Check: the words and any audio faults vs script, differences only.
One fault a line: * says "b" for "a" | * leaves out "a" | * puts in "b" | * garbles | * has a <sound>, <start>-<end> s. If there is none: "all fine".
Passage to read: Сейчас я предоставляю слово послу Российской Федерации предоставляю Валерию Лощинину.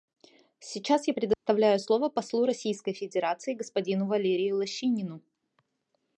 * has a dropout, 1.3-1.5 s
* says "господину" for "предоставляю"